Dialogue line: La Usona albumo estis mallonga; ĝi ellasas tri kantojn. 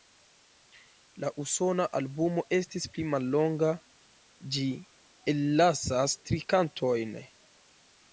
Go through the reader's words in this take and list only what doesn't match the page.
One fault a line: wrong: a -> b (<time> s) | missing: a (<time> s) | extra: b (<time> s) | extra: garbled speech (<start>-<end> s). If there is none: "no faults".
extra: pli (2.9 s)